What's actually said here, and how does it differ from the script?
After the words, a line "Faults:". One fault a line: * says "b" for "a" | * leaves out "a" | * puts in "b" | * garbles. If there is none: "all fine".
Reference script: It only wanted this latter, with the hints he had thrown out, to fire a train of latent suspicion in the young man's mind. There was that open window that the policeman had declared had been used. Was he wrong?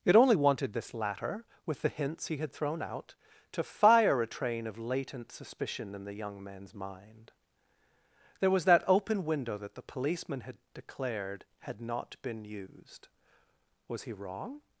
It only wanted this latter, with the hints he had thrown out, to fire a train of latent suspicion in the young man's mind. There was that open window that the policeman had declared had not been used. Was he wrong?
Faults:
* puts in "not"